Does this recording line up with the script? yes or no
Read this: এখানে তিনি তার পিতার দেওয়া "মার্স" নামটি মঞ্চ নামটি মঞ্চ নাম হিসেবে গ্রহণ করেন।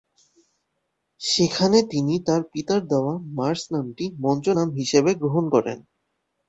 no